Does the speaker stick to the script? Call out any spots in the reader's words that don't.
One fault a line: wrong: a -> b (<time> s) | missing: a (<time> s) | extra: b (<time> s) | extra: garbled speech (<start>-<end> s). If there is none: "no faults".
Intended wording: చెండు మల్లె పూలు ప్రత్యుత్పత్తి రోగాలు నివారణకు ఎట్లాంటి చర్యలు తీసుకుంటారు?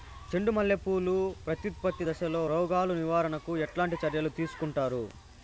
extra: దశలో (2.1 s)